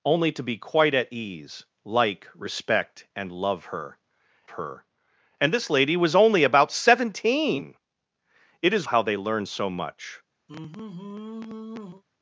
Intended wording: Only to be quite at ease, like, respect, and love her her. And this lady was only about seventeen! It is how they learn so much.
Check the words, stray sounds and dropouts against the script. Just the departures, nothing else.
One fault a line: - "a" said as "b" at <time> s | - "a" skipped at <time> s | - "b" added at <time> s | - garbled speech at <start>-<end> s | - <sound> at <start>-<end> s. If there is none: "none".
- sigh at 10.5-12.0 s